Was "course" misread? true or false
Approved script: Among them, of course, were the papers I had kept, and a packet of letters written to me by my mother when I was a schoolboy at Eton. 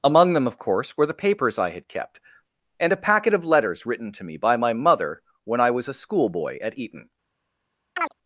false